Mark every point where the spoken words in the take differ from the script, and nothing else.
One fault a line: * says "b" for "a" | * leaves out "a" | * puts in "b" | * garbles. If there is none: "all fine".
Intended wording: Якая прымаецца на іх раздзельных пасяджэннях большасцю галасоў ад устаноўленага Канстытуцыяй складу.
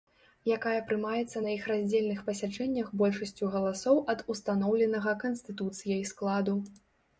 all fine